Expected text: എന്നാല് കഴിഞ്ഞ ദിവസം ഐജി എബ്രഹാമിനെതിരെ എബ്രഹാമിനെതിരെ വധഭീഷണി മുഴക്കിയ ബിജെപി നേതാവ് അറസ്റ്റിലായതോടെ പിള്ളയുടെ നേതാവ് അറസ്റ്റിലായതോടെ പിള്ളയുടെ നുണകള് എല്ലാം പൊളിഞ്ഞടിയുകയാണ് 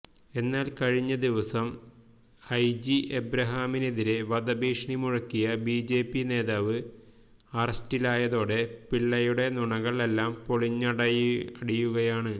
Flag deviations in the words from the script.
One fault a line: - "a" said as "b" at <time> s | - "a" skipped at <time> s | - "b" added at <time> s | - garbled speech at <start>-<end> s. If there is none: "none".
- "എബ്രഹാമിനെതിരെ" skipped at 4.1 s
- "നേതാവ് അറസ്റ്റിലായതോടെ പിള്ളയുടെ" skipped at 9.5 s